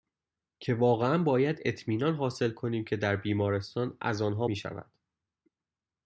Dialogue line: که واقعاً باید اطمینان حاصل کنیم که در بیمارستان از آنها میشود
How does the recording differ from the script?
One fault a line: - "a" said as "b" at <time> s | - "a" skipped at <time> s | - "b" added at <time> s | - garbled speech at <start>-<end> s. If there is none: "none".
none